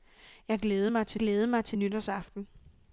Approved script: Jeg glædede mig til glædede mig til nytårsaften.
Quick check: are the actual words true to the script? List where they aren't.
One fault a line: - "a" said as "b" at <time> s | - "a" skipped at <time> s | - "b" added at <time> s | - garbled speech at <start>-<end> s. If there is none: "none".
none